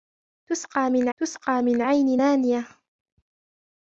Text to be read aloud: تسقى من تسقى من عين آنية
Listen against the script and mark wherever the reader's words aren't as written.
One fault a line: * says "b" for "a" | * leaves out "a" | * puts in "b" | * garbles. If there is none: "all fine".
all fine